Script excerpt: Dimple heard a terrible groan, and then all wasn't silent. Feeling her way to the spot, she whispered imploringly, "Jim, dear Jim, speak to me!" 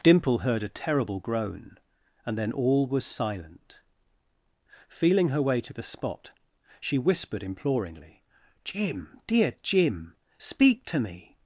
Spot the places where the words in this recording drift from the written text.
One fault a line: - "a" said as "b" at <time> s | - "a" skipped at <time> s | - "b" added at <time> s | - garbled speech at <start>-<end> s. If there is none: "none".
- "wasn't" said as "was" at 2.9 s